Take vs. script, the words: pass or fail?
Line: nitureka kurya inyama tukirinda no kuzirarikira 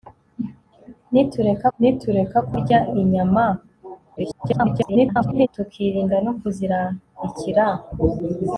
fail